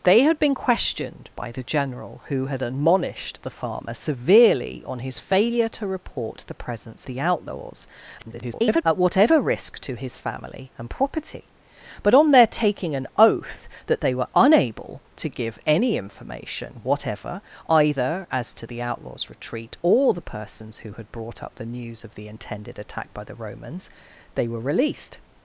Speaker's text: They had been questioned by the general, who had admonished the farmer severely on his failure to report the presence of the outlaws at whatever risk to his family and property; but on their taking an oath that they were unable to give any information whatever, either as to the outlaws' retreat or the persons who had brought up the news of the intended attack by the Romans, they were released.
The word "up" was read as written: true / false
true